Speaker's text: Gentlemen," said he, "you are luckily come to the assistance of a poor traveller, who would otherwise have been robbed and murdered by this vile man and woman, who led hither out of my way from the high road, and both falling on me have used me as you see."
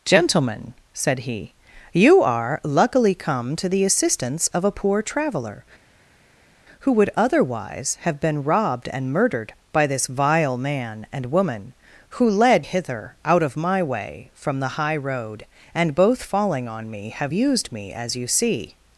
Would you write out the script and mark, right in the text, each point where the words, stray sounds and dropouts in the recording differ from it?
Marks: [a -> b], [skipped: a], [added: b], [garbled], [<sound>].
Gentlemen," said he, "you are luckily come to the assistance of a poor traveller, who would otherwise have been robbed and murdered by this vile man and woman, who led hither out of my way from the high road, and both falling on me have used me as you see."